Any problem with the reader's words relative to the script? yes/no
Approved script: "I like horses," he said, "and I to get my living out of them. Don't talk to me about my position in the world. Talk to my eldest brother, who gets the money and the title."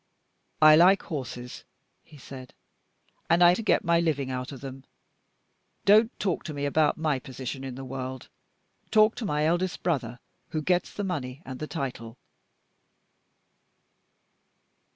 no